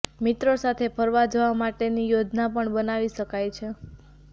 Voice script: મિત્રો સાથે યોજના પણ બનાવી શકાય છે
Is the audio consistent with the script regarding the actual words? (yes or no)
no